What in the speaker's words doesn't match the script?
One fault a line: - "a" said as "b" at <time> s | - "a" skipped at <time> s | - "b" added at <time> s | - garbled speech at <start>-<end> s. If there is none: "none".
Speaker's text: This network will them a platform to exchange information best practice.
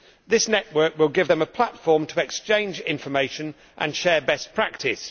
- "give" added at 1.1 s
- "and share" added at 3.8 s